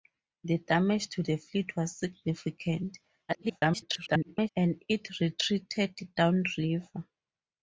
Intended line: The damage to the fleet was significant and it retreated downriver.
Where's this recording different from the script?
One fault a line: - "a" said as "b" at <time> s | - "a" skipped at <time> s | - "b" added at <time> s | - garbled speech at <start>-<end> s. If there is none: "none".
- garbled speech at 3.3-4.5 s